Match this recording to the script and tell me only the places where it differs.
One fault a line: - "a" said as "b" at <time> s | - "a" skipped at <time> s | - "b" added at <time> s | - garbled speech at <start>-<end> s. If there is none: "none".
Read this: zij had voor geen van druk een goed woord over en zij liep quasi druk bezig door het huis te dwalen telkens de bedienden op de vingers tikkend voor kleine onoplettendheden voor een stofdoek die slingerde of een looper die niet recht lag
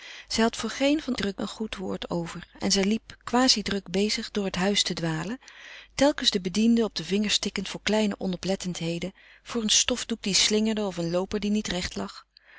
none